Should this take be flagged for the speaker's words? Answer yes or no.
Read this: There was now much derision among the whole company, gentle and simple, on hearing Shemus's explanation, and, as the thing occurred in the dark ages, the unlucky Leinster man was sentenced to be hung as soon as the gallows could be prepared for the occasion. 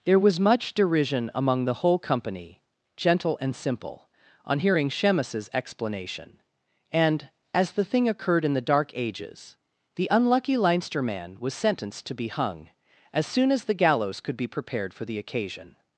yes